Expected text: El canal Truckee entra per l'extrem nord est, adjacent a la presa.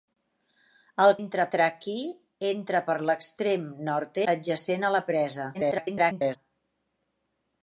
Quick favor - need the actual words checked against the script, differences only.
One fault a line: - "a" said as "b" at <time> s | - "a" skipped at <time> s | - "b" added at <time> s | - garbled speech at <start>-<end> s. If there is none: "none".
- "canal" said as "entra" at 1.2 s
- "est" skipped at 4.2 s
- garbled speech at 5.5-6.4 s